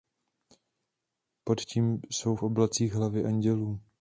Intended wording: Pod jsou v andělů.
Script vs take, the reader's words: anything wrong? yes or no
yes